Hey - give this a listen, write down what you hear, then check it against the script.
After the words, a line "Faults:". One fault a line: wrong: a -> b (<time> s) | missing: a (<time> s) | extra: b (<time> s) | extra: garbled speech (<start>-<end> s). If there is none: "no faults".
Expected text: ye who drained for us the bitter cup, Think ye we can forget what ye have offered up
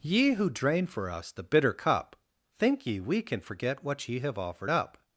ye who drain for us the bitter cup, Think ye we can forget what ye have offered up
Faults:
wrong: drained -> drain (0.5 s)